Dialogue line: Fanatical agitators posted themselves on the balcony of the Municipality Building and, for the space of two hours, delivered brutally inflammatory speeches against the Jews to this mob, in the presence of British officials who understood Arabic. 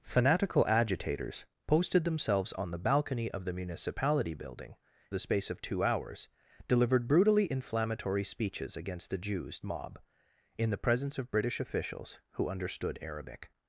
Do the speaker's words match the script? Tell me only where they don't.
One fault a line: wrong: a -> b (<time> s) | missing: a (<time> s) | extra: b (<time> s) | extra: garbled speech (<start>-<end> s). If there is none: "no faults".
missing: and for (4.8 s)
missing: to this (9.6 s)